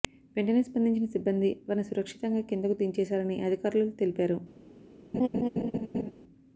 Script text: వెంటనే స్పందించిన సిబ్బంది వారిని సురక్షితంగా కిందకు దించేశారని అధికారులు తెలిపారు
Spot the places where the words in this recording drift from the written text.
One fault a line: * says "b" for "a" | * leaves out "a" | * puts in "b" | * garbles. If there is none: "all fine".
all fine